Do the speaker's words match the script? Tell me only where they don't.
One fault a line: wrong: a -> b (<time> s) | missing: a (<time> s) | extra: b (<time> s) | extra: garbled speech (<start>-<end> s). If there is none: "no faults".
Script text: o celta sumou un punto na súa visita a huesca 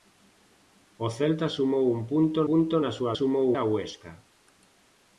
extra: punto (2.5 s)
wrong: visita -> sumou (3.2 s)